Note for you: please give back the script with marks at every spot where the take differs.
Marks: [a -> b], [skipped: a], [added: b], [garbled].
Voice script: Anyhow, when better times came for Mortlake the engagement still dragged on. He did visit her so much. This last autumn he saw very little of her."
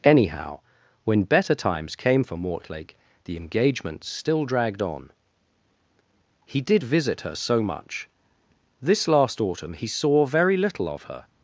Anyhow, when better times came for Mortlake the engagement still dragged on. He did visit her so much. This last autumn he saw very little of her."